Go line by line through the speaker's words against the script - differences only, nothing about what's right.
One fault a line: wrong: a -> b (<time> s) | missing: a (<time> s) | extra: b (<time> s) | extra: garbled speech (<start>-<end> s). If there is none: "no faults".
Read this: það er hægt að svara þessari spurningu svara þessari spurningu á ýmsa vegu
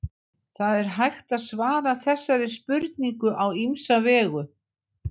missing: svara þessari spurningu (3.4 s)